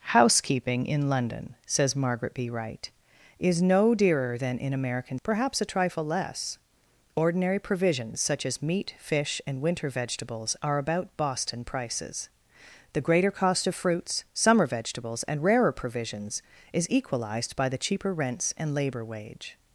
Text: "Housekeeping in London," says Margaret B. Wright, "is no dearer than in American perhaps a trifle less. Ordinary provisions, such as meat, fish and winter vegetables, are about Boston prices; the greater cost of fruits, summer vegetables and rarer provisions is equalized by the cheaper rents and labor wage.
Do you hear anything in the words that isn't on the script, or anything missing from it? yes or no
no